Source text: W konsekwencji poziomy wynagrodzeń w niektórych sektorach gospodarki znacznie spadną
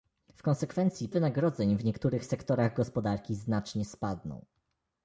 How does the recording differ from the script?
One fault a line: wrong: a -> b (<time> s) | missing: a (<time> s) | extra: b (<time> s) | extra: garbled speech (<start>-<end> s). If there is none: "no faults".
missing: poziomy (1.1 s)